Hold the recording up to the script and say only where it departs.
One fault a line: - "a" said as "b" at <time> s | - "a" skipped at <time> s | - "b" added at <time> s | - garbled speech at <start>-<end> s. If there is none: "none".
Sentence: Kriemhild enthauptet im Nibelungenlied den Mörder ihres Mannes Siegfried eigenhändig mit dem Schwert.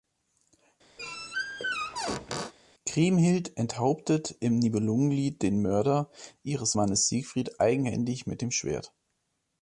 none